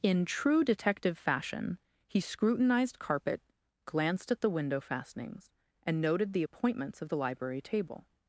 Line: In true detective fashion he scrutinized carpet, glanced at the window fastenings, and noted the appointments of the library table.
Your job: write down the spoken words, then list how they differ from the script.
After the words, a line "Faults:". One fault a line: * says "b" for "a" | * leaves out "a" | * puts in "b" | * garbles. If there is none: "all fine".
In true detective fashion he scrutinized carpet, glanced at the window fastenings, and noted the appointments of the library table.
Faults:
all fine